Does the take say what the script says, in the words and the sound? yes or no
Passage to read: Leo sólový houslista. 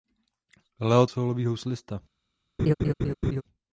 no